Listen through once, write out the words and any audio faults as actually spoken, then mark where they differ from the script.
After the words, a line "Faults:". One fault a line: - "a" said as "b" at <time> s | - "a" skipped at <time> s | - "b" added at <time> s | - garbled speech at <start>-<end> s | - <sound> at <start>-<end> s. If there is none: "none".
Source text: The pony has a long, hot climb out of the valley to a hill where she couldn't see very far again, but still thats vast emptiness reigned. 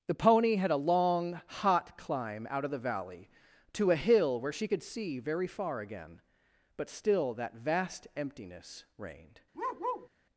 The pony had a long, hot climb out of the valley to a hill where she could see very far again, but still that vast emptiness reigned.
Faults:
- "has" said as "had" at 0.6 s
- "couldn't" said as "could" at 4.6 s
- "thats" said as "that" at 7.3 s
- bark at 9.5-10.1 s